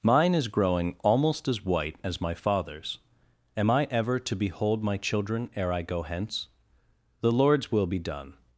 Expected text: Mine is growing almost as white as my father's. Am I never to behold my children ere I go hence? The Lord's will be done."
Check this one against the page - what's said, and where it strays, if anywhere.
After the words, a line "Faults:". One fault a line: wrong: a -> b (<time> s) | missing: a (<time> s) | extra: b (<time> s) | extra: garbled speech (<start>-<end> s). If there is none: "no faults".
Mine is growing almost as white as my father's. Am I ever to behold my children ere I go hence? The Lord's will be done."
Faults:
wrong: never -> ever (3.9 s)